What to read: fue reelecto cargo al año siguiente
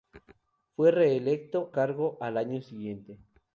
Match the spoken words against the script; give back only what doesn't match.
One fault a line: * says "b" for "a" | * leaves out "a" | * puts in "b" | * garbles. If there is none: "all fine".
all fine